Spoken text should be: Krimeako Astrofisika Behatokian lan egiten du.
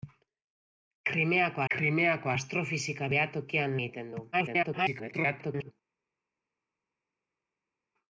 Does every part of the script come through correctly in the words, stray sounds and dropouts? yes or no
no